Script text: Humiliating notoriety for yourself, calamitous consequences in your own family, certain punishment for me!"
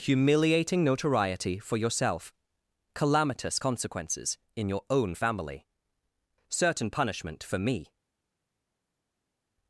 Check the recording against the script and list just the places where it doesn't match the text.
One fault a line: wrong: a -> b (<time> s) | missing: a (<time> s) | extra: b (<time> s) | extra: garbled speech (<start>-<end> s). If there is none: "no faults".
no faults